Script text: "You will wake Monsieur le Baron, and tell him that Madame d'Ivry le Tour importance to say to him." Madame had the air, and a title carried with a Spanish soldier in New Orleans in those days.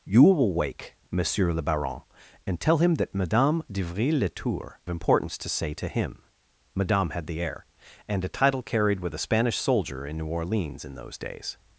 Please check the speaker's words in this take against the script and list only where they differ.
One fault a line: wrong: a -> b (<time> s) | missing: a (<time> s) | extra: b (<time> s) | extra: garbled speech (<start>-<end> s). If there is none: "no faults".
no faults